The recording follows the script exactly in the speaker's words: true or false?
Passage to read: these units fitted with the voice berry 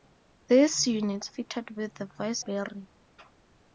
true